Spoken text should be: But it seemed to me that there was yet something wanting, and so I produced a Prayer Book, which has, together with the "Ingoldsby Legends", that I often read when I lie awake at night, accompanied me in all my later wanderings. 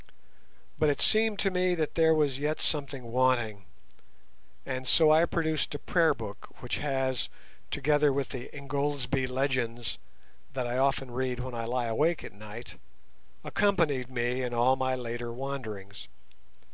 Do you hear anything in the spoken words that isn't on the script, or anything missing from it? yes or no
no